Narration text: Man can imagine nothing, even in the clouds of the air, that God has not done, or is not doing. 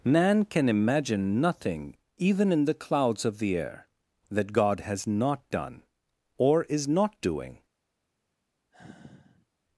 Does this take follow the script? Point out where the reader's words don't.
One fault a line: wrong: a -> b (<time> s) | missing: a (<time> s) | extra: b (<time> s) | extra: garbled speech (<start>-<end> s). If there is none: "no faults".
no faults